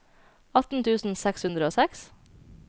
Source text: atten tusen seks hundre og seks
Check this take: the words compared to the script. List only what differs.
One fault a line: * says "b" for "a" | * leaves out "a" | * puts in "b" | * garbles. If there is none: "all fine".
all fine